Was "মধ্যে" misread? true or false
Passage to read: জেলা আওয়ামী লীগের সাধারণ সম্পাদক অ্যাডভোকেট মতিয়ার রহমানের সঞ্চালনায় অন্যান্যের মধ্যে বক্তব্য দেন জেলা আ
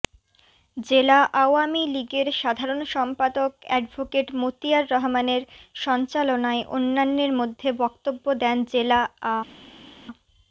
false